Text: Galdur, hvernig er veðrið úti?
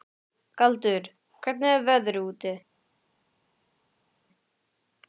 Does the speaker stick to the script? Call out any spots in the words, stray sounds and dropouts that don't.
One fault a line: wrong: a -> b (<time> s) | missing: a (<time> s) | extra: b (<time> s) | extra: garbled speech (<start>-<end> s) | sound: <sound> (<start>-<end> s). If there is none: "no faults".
no faults